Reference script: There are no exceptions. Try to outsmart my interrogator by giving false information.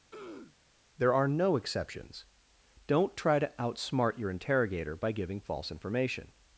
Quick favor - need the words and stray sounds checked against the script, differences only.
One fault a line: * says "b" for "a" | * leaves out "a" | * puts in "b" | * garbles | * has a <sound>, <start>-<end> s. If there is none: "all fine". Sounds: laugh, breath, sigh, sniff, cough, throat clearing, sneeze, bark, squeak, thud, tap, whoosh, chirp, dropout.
* has a throat clearing, 0.1-0.6 s
* puts in "Don't"
* says "your" for "my"